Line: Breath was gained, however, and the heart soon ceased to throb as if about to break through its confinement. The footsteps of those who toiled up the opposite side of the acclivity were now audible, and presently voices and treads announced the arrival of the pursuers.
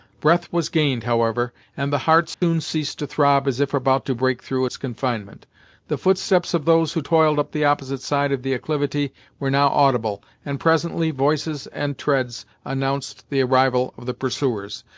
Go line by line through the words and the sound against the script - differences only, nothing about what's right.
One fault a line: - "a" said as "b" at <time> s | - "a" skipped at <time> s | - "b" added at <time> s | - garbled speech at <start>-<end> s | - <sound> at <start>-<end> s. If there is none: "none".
- dropout at 2.3-2.4 s